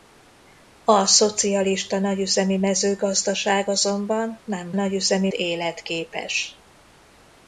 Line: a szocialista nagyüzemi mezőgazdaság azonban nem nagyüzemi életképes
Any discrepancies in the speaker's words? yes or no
no